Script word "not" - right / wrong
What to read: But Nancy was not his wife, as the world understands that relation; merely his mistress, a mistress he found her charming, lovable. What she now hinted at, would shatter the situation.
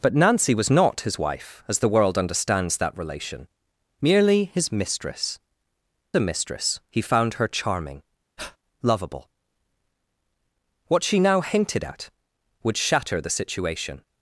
right